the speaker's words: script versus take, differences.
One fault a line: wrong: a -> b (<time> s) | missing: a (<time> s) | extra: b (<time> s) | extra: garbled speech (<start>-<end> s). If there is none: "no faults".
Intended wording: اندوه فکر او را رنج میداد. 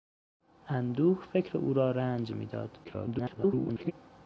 extra: garbled speech (2.8-3.9 s)